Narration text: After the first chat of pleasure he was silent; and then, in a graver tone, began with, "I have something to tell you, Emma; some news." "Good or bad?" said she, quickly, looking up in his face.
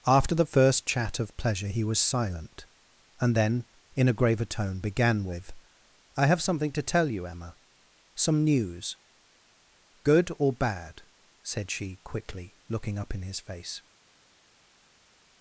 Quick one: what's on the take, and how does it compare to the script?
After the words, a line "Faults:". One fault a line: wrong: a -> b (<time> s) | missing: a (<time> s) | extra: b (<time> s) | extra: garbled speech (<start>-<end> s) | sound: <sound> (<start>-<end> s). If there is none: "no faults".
After the first chat of pleasure he was silent; and then, in a graver tone, began with, "I have something to tell you, Emma; some news." "Good or bad?" said she, quickly, looking up in his face.
Faults:
no faults